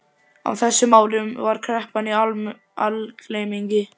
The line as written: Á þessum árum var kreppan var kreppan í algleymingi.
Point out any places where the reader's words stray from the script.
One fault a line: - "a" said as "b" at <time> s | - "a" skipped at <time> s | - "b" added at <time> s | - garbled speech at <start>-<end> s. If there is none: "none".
- "var kreppan" skipped at 2.1 s